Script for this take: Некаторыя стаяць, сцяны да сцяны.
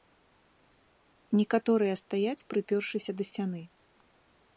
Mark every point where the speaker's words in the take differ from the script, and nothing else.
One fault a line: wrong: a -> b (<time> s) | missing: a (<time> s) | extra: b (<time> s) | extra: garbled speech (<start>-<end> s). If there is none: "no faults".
wrong: сцяны -> прыпёршыся (2.5 s)